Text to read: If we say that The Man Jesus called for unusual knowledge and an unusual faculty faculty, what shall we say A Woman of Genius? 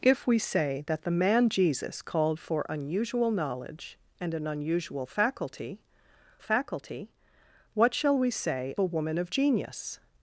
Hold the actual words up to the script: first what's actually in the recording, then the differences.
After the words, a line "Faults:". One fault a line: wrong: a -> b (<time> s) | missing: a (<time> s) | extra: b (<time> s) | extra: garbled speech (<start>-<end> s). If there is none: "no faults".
If we say that The Man Jesus called for unusual knowledge and an unusual faculty faculty, what shall we say A Woman of Genius?
Faults:
no faults